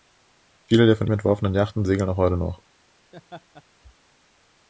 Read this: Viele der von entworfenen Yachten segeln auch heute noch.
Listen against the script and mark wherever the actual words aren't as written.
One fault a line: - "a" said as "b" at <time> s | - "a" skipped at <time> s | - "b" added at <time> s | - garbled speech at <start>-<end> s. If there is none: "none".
none